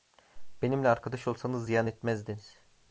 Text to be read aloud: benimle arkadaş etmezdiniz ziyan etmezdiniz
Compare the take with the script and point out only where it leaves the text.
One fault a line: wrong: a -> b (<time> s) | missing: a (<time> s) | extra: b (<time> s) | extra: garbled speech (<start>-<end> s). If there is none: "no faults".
wrong: etmezdiniz -> olsanız (1.3 s)